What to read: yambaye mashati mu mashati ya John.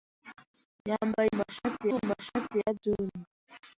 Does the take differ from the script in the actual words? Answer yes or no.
no